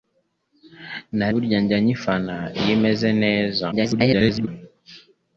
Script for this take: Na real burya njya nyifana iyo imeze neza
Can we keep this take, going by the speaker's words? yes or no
no